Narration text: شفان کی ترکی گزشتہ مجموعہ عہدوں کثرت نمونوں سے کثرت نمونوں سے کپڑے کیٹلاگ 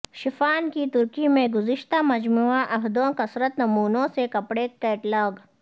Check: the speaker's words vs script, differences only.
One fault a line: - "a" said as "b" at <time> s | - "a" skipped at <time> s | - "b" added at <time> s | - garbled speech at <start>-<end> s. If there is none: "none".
- "میں" added at 1.3 s
- "کثرت نمونوں سے" skipped at 4.3 s